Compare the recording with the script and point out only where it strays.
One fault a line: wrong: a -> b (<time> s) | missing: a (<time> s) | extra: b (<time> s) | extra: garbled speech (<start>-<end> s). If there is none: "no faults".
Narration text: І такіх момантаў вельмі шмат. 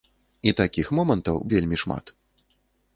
no faults